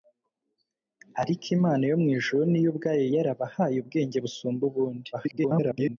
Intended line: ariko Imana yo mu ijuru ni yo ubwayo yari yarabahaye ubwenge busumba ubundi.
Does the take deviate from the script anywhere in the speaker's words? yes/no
yes